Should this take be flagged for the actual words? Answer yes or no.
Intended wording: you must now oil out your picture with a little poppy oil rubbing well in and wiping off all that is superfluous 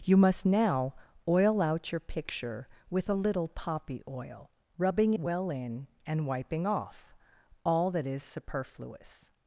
no